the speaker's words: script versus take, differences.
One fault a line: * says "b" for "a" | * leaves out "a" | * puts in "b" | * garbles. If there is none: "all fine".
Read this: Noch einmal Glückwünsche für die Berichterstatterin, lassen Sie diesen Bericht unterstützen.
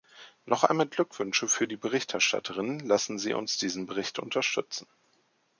* puts in "uns"